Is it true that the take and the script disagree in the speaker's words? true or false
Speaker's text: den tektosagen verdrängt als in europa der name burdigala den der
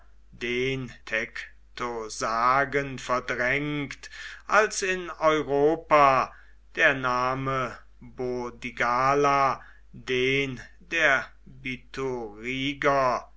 false